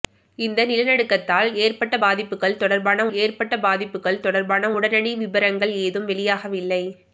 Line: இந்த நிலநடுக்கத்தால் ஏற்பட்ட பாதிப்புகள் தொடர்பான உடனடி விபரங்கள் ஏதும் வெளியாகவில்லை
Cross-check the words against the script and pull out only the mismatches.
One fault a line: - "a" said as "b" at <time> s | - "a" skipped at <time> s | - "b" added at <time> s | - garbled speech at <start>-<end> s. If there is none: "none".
- "ஏற்பட்ட பாதிப்புகள் தொடர்பான" added at 3.2 s